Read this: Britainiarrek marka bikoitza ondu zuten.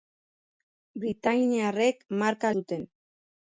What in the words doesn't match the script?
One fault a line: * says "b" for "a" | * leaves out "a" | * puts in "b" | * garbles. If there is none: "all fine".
* leaves out "bikoitza ondu"